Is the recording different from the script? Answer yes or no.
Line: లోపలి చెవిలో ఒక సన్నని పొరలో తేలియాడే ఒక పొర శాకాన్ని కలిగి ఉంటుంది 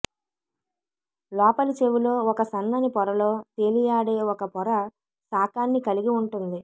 no